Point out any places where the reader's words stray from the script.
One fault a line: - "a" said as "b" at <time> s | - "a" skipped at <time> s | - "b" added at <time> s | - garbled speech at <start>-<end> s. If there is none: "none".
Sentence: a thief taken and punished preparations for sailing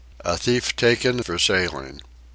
- "and punished preparations" skipped at 1.2 s